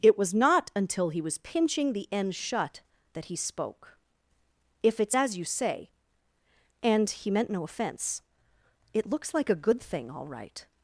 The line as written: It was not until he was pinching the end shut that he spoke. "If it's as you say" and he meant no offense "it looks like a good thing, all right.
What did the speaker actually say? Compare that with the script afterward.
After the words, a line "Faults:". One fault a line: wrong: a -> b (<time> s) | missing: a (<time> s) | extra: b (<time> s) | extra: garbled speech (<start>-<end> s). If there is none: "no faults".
It was not until he was pinching the end shut that he spoke. "If it's as you say" and he meant no offense "it looks like a good thing, all right.
Faults:
no faults